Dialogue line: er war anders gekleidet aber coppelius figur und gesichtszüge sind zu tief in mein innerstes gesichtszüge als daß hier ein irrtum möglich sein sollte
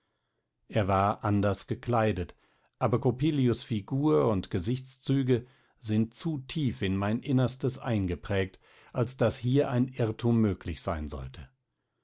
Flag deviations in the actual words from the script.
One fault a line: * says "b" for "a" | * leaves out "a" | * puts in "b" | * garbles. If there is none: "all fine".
* says "eingeprägt" for "gesichtszüge"